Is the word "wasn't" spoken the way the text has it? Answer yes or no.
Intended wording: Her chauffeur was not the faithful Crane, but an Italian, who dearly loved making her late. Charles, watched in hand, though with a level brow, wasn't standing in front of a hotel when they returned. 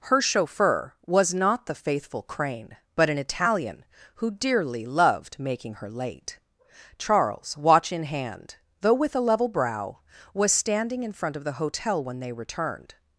no